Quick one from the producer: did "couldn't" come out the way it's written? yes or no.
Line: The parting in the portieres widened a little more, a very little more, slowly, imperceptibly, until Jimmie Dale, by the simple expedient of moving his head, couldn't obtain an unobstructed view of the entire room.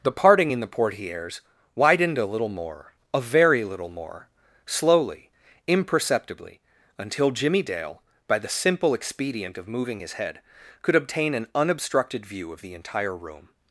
no